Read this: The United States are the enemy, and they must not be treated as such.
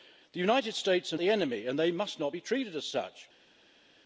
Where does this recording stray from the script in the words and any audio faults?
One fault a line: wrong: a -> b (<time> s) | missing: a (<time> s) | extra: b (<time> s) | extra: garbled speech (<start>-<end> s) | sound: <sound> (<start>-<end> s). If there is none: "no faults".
no faults